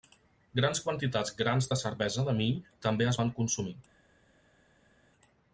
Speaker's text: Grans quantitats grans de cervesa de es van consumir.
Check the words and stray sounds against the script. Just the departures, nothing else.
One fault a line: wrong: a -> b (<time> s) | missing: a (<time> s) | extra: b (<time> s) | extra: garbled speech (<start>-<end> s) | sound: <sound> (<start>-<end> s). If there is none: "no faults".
extra: mill també (2.4 s)